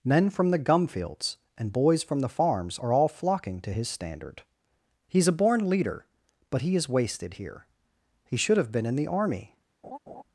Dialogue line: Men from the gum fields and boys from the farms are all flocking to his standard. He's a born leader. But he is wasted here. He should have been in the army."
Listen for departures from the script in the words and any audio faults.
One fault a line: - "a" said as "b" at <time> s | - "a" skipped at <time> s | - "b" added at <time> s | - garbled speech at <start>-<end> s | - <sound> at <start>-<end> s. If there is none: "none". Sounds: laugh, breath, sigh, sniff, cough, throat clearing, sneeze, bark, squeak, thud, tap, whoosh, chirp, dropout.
- laugh at 9.8-10.2 s